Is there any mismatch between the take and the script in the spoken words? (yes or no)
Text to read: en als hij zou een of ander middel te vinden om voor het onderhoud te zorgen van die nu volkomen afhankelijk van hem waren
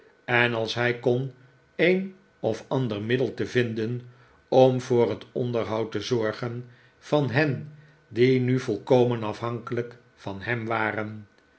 yes